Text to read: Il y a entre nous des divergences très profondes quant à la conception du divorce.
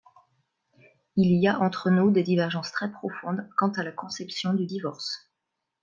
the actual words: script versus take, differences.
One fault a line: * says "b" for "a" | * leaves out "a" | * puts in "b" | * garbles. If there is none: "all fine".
all fine